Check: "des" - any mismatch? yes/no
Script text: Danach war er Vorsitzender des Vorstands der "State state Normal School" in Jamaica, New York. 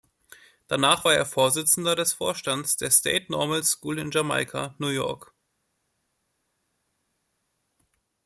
no